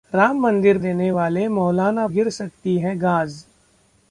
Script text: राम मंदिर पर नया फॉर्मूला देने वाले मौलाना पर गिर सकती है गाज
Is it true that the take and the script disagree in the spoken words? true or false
true